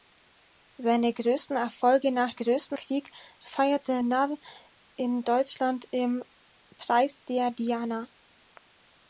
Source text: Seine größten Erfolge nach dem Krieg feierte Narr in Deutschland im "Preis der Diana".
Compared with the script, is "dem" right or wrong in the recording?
wrong